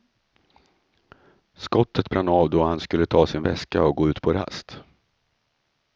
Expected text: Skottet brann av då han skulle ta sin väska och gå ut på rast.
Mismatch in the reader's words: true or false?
false